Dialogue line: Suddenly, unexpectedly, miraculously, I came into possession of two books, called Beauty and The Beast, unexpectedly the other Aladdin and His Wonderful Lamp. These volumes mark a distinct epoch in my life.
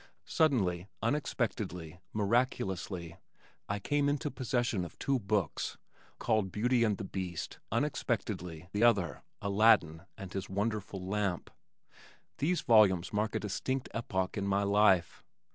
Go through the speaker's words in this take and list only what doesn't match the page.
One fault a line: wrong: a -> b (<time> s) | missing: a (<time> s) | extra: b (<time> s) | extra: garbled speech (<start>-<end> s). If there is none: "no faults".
no faults